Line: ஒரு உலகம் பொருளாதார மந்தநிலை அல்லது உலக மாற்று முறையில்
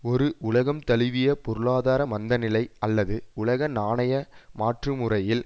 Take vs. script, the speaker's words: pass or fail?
fail